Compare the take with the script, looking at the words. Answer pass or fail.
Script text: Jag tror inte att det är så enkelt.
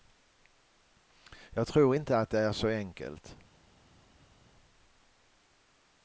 pass